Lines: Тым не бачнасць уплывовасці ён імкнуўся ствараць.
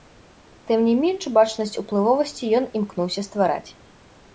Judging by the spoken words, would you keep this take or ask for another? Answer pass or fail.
fail